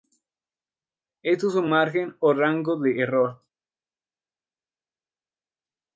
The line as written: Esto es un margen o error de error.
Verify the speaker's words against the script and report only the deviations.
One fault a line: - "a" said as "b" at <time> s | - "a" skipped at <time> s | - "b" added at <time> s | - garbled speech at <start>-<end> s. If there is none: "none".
- "error" said as "rango" at 2.3 s